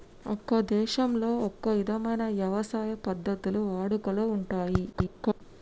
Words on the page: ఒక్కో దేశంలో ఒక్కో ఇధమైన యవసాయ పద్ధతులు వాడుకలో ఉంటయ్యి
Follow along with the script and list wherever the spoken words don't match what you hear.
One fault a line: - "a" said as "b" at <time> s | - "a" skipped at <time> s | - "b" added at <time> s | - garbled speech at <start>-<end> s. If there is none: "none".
- garbled speech at 4.9-5.4 s